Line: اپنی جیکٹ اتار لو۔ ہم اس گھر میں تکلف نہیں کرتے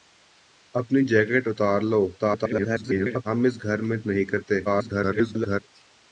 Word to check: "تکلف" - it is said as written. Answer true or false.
false